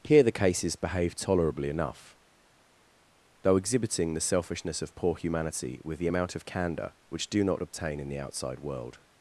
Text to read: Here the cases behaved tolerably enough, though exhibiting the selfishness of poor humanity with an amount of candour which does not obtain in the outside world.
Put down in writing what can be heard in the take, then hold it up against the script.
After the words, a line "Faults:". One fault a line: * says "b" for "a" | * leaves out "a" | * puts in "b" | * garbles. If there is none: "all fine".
Here the cases behaved tolerably enough, though exhibiting the selfishness of poor humanity with the amount of candour which do not obtain in the outside world.
Faults:
* says "the" for "an"
* says "do" for "does"